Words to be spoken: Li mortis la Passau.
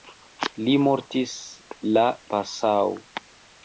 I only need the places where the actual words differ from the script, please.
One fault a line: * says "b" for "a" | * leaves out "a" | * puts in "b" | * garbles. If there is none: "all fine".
all fine